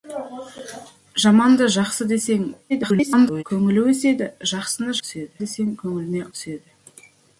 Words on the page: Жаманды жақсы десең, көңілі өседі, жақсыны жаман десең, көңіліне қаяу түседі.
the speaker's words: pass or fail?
fail